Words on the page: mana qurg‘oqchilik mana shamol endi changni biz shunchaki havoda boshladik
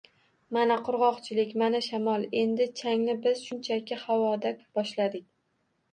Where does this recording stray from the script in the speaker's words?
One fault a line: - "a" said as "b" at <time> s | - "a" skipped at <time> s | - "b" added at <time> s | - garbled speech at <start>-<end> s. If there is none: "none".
none